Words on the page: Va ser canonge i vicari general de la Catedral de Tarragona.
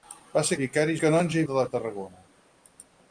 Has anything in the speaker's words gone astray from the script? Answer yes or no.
yes